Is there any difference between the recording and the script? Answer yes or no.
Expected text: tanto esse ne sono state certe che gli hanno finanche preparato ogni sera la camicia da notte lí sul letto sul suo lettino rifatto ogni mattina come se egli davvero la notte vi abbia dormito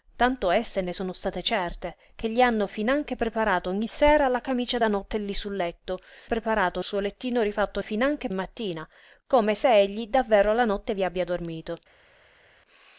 yes